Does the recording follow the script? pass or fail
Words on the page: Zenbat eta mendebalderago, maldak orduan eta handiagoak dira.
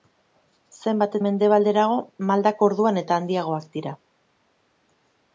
fail